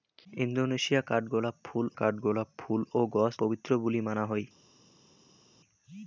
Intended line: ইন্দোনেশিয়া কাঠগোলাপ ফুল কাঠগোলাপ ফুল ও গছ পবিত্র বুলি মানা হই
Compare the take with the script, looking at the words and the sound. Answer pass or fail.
pass